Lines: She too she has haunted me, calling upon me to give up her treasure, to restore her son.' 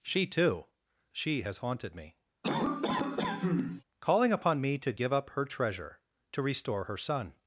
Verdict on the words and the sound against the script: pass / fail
fail